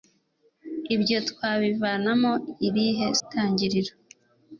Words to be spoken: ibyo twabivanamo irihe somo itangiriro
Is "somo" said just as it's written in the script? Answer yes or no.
no